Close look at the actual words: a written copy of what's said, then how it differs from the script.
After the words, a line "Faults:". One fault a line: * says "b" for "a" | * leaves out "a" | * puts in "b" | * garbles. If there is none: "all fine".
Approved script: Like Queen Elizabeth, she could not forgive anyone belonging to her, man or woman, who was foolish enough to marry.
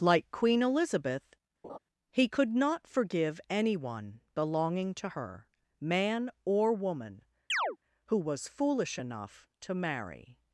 Like Queen Elizabeth, he could not forgive anyone belonging to her, man or woman, who was foolish enough to marry.
Faults:
* says "he" for "she"